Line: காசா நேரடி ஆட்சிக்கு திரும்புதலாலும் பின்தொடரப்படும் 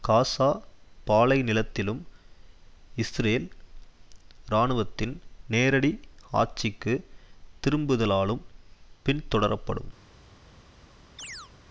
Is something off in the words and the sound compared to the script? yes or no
yes